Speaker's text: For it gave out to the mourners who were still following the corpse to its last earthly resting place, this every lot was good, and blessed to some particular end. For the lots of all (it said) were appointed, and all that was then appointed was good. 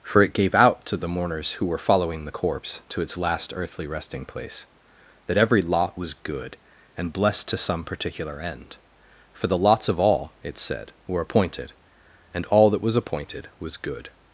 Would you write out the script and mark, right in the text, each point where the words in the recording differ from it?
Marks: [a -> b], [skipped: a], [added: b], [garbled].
For it gave out to the mourners who were [skipped: still] following the corpse to its last earthly resting place, [this -> that] every lot was good, and blessed to some particular end. For the lots of all (it said) were appointed, and all that was [skipped: then] appointed was good.